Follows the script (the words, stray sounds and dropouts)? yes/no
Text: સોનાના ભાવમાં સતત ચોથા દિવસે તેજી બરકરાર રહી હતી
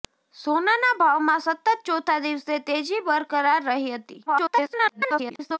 no